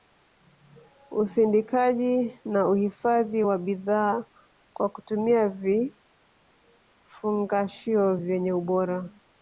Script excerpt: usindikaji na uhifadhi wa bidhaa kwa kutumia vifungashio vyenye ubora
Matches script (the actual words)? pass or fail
pass